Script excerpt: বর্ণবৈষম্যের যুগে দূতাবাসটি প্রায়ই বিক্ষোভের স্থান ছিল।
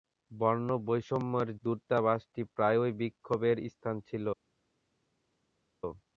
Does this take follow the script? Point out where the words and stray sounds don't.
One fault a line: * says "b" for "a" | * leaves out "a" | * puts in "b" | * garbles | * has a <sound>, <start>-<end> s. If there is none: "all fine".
* leaves out "যুগে"